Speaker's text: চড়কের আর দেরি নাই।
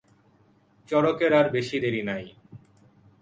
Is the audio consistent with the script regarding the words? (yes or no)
no